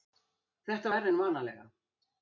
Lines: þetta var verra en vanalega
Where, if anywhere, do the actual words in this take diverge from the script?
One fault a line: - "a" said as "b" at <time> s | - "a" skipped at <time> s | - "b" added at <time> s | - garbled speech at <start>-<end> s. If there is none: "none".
- "var" skipped at 0.9 s